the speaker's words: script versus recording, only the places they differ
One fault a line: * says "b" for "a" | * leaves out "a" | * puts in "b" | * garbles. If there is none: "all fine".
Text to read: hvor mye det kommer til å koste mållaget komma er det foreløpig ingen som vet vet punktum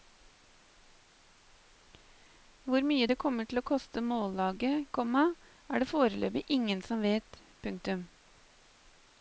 * leaves out "vet"